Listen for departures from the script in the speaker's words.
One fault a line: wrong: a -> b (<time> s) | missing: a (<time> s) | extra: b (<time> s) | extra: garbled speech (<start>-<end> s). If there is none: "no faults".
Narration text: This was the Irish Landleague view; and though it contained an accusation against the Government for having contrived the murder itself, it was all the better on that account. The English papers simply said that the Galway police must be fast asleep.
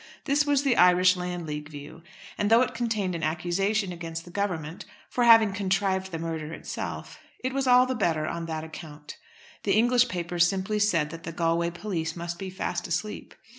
no faults